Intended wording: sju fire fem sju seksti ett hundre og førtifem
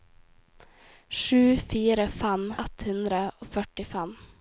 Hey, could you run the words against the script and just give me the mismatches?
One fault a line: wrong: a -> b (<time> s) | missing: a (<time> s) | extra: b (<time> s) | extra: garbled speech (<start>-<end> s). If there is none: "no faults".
missing: sju seksti (2.5 s)